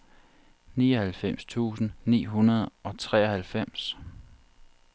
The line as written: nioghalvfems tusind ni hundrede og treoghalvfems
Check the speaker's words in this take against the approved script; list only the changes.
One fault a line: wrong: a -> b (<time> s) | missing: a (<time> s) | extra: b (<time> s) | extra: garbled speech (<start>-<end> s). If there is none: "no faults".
no faults